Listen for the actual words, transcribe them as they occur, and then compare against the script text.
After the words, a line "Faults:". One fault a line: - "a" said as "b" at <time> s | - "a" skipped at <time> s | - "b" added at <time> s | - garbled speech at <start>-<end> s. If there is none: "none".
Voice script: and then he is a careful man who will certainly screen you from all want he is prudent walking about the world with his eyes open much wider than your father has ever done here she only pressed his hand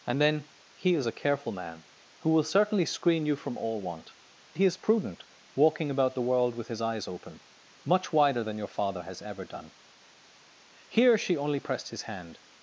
and then he is a careful man who will certainly screen you from all want he is prudent walking about the world with his eyes open much wider than your father has ever done here she only pressed his hand
Faults:
none